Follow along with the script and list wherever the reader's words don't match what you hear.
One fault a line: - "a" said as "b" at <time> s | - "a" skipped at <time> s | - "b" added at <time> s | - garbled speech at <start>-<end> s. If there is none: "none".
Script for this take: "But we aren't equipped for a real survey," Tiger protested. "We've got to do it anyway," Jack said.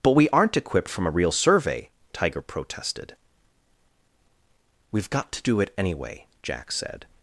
- "for" said as "from" at 0.9 s